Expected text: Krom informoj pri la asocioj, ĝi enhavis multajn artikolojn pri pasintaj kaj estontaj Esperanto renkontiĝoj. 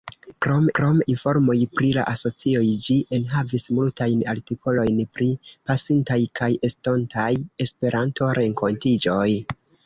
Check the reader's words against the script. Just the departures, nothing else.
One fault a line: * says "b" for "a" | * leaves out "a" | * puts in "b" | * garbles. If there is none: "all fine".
* puts in "krom"